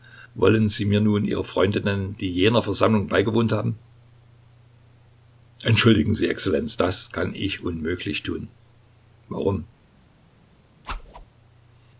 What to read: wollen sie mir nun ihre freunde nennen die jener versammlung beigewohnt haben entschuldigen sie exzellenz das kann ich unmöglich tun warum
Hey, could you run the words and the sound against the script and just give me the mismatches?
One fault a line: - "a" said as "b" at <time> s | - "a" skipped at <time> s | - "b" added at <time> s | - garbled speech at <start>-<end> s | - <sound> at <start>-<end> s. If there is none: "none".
- whoosh at 10.8-11.2 s